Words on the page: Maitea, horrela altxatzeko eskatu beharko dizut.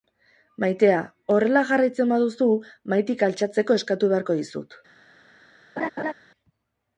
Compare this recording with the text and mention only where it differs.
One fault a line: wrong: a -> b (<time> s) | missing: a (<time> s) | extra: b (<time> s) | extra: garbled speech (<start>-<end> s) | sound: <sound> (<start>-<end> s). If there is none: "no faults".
extra: jarraitzen baduzu mahaitik (1.7 s)
sound: laugh (5.8-6.1 s)